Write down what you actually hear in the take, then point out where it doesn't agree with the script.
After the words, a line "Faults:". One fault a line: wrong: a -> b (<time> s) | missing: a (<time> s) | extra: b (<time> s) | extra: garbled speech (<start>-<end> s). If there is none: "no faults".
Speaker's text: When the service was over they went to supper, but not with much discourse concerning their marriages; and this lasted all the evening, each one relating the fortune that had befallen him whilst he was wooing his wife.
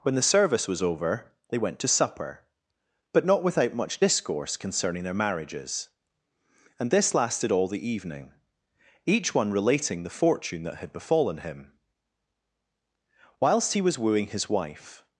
When the service was over they went to supper, but not without much discourse concerning their marriages; and this lasted all the evening, each one relating the fortune that had befallen him whilst he was wooing his wife.
Faults:
wrong: with -> without (3.4 s)